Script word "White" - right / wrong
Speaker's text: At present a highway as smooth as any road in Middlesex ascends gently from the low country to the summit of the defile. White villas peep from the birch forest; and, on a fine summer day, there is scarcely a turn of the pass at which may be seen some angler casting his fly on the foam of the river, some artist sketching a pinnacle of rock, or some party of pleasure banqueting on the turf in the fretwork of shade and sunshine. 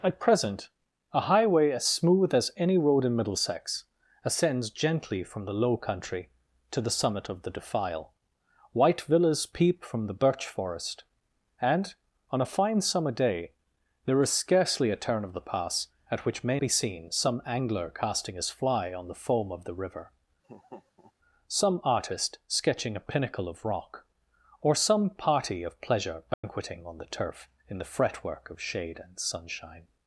right